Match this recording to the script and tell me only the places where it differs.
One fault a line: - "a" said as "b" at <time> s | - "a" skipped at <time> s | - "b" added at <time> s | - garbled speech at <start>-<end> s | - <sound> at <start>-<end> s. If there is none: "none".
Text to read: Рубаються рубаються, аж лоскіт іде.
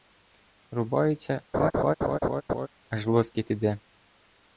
- "рубаються" skipped at 1.4 s
- laugh at 1.5-2.7 s